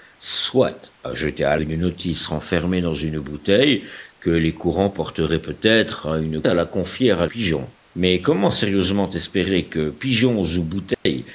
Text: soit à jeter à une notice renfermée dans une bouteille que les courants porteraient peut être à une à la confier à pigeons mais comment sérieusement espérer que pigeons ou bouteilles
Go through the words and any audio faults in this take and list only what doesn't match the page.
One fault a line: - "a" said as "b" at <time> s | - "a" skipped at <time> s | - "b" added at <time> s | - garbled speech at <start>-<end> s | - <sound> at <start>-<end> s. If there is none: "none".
- dropout at 10.9-11.1 s